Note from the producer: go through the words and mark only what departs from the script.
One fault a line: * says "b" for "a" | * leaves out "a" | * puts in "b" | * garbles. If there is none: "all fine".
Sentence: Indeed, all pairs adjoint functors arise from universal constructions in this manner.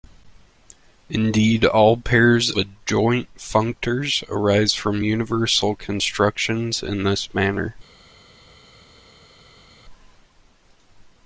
all fine